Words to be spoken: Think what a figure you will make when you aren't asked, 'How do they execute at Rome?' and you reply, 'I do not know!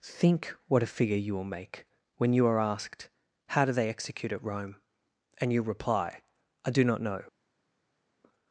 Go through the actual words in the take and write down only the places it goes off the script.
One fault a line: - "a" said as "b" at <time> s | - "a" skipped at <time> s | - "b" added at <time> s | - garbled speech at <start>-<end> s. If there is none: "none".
- "aren't" said as "are" at 2.5 s